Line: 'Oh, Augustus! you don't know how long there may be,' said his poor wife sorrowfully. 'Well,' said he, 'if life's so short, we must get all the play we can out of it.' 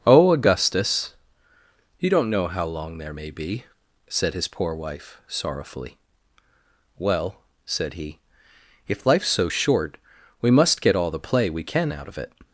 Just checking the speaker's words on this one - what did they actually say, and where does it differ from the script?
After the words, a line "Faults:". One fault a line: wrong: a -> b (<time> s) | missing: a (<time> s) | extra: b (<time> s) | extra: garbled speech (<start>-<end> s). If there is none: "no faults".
'Oh, Augustus! you don't know how long there may be,' said his poor wife sorrowfully. 'Well,' said he, 'if life's so short, we must get all the play we can out of it.'
Faults:
no faults